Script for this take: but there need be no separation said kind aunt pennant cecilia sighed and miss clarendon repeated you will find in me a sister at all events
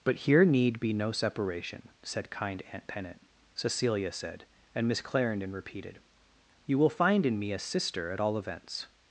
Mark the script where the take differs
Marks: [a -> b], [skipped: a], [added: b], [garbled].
but [there -> here] need be no separation said kind aunt pennant cecilia [sighed -> said] and miss clarendon repeated you will find in me a sister at all events